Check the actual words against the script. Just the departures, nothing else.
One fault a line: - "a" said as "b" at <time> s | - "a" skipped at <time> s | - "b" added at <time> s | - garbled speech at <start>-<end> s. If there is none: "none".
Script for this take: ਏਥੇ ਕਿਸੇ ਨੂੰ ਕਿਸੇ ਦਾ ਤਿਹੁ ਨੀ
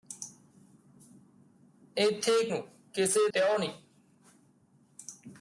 - "ਕਿਸੇ" skipped at 2.4 s
- "ਦਾ" skipped at 3.3 s